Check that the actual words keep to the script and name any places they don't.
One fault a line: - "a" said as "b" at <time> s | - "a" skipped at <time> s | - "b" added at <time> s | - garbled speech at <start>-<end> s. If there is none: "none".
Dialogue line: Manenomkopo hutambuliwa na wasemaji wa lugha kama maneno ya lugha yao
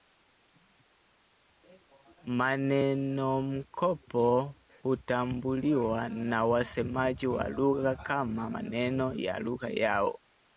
none